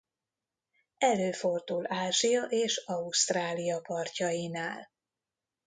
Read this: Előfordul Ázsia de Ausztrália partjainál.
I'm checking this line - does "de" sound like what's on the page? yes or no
no